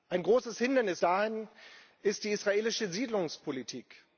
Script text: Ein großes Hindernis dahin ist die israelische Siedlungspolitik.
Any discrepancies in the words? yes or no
no